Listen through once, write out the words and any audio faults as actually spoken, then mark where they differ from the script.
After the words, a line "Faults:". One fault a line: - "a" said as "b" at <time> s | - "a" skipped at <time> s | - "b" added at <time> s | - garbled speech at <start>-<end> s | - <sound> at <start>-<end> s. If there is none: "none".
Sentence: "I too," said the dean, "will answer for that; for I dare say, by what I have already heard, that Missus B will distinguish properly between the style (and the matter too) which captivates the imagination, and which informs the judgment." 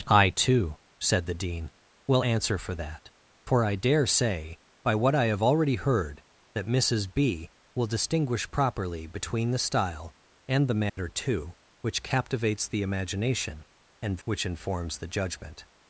"I too," said the dean, "will answer for that; for I dare say, by what I have already heard, that Missus B will distinguish properly between the style (and the matter too) which captivates the imagination, and which informs the judgment."
Faults:
- dropout at 10.9-11.0 s